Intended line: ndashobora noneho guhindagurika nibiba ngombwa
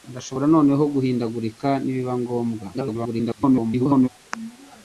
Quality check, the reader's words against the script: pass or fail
fail